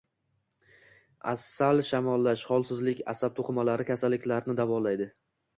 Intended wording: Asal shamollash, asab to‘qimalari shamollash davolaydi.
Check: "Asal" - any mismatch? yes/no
no